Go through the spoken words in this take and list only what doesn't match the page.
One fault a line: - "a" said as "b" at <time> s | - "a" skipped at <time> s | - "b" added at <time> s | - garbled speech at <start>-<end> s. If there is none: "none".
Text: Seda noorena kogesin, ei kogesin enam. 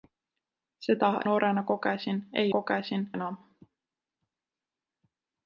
none